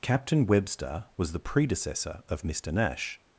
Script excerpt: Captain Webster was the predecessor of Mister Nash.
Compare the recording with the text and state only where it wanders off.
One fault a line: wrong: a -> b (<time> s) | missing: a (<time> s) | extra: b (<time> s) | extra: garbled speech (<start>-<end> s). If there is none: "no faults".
no faults